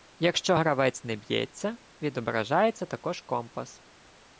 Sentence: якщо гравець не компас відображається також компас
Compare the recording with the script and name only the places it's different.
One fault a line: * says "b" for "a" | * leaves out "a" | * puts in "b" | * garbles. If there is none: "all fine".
* says "б'ється" for "компас"